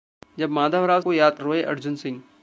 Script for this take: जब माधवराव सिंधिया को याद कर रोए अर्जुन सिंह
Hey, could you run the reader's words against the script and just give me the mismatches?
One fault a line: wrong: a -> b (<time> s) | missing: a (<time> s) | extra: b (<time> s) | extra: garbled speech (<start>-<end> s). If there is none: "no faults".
missing: सिंधिया (1.0 s)
missing: कर (1.4 s)